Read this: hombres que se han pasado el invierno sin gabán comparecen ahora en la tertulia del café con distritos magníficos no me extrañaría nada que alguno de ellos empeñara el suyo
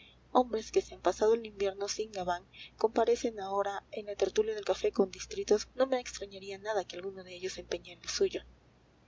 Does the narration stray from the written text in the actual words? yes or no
yes